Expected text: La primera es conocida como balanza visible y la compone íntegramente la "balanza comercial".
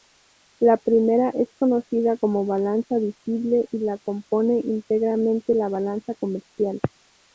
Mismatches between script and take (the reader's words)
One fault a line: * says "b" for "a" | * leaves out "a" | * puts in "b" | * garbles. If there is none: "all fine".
all fine